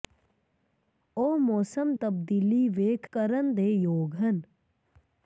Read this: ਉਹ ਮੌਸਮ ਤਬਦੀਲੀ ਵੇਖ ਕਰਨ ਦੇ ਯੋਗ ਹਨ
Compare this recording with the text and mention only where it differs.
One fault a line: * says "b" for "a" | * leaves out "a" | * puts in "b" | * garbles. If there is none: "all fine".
all fine